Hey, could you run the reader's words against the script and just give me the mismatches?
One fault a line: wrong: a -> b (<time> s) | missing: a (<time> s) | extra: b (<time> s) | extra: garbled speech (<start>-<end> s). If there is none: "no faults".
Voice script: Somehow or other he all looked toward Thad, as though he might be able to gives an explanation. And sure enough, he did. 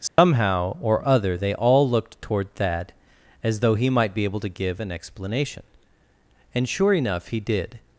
wrong: he -> they (1.4 s)
wrong: gives -> give (4.5 s)